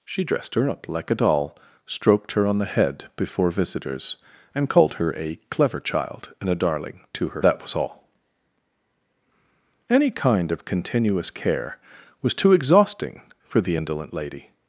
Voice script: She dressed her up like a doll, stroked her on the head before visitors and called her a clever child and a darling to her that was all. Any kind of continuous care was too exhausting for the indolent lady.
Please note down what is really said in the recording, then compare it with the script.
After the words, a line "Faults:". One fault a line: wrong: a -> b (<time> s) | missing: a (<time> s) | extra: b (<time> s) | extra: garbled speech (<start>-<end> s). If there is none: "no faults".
She dressed her up like a doll, stroked her on the head before visitors and called her a clever child and a darling to her that was all. Any kind of continuous care was too exhausting for the indolent lady.
Faults:
no faults